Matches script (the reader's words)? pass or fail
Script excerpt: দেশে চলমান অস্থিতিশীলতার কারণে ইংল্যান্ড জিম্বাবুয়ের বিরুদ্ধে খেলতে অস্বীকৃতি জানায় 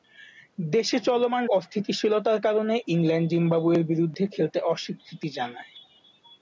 pass